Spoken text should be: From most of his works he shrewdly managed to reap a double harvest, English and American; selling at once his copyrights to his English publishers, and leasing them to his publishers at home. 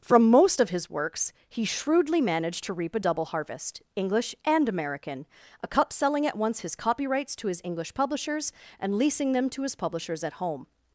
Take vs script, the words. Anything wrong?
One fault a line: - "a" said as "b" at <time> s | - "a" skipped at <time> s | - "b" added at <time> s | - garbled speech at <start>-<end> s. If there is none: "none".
- "a cup" added at 5.6 s